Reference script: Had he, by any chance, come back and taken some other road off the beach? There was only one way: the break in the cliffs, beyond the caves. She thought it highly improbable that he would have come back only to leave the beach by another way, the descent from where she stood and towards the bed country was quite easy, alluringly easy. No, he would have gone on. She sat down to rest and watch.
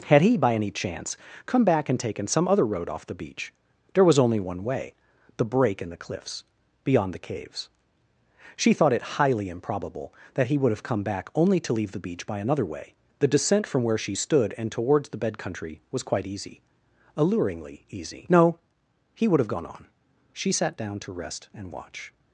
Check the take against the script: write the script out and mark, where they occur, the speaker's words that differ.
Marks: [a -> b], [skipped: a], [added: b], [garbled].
Had he, by any chance, come back and taken some other road off the beach? There was only one way: the break in the cliffs, beyond the caves. She thought it highly improbable that he would have come back only to leave the beach by another way, the descent from where she stood and towards the bed country was quite easy, alluringly easy. No, he would have gone on. She sat down to rest and watch.